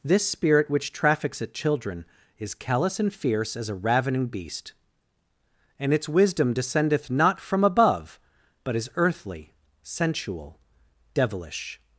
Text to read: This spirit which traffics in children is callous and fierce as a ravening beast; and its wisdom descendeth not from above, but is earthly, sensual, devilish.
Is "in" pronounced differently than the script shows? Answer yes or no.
yes